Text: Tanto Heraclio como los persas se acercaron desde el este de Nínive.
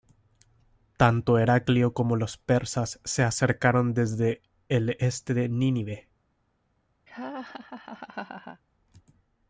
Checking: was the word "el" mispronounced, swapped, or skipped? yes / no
no